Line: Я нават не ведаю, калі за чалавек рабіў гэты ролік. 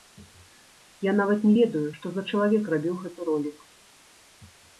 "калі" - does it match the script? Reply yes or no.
no